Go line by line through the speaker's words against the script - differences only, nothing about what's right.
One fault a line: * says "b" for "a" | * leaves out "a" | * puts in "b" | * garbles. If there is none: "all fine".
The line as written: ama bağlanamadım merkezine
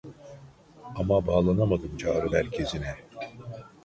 * puts in "çağrı"